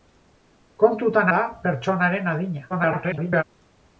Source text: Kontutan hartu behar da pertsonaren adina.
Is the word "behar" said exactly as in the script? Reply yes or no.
no